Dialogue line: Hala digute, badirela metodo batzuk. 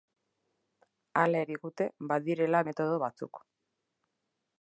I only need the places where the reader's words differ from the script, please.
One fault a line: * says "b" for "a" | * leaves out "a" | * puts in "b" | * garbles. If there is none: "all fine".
all fine